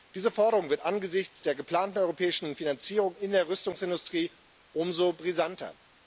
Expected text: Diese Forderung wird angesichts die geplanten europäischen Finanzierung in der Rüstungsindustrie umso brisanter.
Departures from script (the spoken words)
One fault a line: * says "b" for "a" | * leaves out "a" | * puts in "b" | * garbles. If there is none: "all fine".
* says "der" for "die"